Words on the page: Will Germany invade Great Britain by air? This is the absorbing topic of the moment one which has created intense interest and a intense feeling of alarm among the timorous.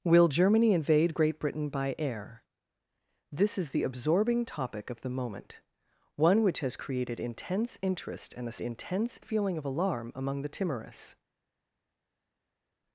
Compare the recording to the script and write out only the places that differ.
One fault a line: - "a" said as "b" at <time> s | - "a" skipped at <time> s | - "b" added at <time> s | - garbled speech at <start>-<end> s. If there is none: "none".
none